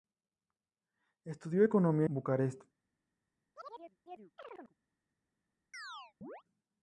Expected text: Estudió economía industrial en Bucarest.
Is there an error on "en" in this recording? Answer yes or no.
yes